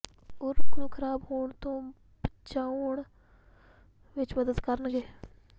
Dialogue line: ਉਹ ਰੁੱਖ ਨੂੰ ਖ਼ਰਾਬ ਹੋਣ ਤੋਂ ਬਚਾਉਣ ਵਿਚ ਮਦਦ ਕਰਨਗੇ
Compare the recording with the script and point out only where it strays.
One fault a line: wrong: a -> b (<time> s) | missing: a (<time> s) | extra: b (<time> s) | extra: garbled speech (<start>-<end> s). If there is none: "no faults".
no faults